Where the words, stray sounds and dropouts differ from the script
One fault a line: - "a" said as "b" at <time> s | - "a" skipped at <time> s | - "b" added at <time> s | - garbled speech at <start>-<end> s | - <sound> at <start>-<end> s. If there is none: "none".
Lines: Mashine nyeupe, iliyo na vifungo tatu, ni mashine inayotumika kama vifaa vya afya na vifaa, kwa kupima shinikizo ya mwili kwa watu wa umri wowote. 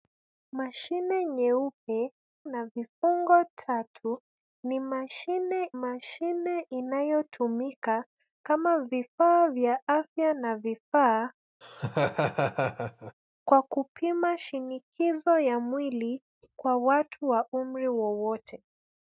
- "iliyo" skipped at 2.1 s
- "mashine" added at 5.7 s
- laugh at 11.6-13.1 s